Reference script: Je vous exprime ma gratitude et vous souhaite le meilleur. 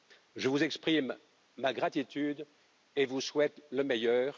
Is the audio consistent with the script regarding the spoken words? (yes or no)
yes